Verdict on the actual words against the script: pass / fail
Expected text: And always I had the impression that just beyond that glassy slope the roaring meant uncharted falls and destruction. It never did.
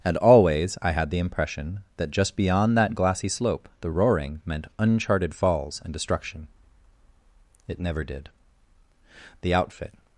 fail